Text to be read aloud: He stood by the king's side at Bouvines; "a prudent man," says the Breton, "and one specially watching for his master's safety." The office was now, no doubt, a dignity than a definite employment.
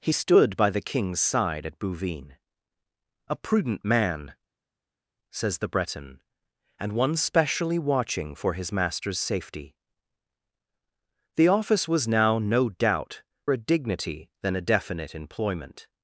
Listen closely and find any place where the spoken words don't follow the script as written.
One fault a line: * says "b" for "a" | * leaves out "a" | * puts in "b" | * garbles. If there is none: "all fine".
all fine